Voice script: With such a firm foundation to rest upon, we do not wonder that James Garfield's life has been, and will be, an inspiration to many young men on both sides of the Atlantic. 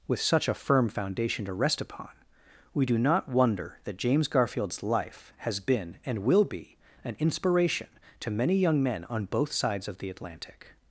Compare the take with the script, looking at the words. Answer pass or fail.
pass